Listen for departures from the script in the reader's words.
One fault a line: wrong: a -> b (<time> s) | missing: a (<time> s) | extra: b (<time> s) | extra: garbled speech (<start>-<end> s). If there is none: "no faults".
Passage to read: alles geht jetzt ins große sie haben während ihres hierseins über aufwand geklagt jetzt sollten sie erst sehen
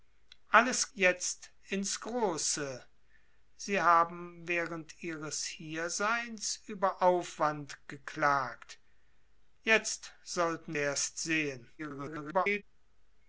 missing: geht (0.9 s)
missing: sie (10.8 s)
extra: garbled speech (11.8-12.6 s)